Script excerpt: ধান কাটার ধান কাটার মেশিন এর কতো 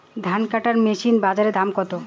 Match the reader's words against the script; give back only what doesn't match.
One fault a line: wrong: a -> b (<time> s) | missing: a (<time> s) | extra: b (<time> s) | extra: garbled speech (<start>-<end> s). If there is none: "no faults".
wrong: ধান কাটার মেশিন এর -> মেশিন এর বাজারে দাম (0.8 s)